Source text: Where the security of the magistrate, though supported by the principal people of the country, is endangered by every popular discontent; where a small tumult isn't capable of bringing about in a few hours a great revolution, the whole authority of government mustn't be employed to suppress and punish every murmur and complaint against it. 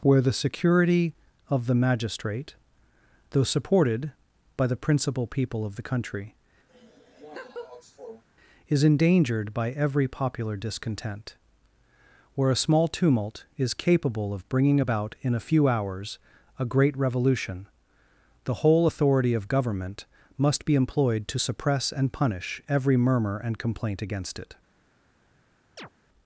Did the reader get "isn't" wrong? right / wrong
wrong